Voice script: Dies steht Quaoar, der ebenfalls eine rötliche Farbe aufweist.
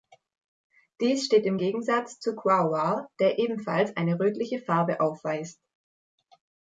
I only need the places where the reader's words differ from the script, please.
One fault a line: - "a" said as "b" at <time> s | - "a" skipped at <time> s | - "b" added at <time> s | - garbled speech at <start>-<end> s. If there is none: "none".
- "im Gegensatz zu" added at 1.4 s